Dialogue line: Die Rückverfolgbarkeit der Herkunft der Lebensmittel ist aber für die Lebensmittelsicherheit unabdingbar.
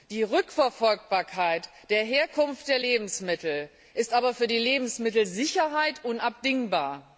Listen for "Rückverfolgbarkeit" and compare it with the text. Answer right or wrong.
right